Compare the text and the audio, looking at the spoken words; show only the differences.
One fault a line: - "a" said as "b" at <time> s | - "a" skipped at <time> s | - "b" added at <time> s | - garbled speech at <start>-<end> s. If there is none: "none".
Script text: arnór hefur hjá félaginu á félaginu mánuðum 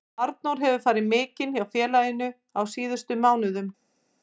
- "farið mikinn" added at 0.8 s
- "félaginu" said as "síðustu" at 2.8 s